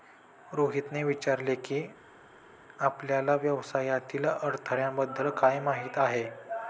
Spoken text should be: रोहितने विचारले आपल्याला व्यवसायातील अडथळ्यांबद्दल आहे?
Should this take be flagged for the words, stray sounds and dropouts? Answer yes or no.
yes